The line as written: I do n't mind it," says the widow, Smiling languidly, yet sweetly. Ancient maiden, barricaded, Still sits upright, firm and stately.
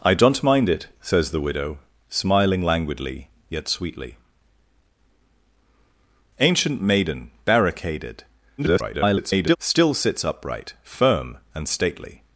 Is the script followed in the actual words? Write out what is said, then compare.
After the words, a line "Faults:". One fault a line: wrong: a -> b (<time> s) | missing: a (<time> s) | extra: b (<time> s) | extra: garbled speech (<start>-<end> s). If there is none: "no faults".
I do n't mind it," says the widow, Smiling languidly, yet sweetly. Ancient maiden, barricaded, [garbled] Still sits upright, firm and stately.
Faults:
extra: garbled speech (8.6-9.6 s)